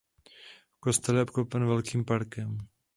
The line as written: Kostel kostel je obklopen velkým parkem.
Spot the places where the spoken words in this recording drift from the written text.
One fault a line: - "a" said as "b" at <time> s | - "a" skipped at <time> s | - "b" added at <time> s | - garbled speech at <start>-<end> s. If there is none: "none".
- "kostel" skipped at 1.1 s